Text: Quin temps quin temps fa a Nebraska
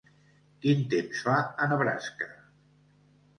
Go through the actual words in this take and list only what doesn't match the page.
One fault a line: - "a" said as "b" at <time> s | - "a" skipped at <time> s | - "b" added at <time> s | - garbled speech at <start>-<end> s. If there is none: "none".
- "quin temps" skipped at 1.2 s